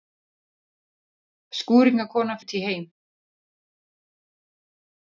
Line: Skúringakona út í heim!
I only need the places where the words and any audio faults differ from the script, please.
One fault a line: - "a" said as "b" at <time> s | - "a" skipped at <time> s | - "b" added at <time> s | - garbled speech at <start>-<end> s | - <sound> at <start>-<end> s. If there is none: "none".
none